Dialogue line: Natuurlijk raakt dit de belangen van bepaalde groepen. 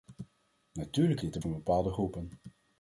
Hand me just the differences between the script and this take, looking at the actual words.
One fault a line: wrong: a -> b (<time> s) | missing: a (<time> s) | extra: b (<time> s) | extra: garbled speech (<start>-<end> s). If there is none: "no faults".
missing: raakt (1.2 s)
missing: belangen (1.4 s)